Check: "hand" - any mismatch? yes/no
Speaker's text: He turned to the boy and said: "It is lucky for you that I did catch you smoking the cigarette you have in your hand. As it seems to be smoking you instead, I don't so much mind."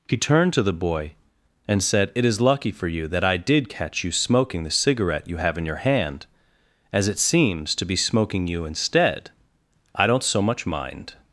no